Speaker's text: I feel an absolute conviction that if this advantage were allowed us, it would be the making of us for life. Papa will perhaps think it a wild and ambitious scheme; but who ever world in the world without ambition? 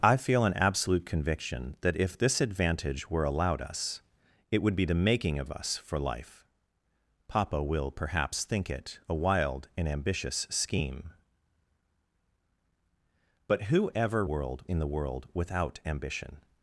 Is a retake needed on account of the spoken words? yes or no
no